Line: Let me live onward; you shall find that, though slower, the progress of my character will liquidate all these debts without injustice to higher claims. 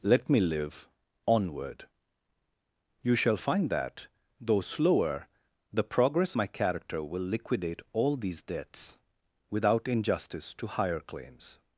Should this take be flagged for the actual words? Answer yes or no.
yes